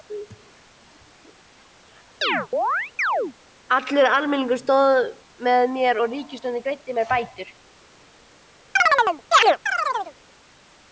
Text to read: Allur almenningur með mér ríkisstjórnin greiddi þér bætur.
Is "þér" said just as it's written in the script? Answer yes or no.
no